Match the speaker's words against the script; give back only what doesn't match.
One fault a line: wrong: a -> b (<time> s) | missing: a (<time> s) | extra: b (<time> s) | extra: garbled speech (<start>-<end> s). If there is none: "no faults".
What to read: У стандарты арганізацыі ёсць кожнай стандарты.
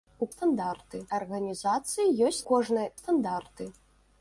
no faults